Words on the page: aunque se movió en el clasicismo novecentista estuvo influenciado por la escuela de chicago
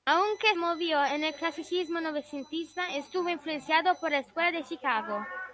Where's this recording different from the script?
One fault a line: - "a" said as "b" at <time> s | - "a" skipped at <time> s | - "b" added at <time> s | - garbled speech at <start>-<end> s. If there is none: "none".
- "se" skipped at 0.6 s